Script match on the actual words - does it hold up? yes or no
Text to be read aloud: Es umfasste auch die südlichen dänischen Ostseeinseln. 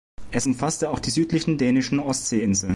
yes